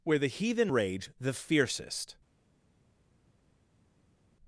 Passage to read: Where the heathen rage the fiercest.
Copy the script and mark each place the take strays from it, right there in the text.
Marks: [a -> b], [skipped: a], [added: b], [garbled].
Where the heathen rage the fiercest.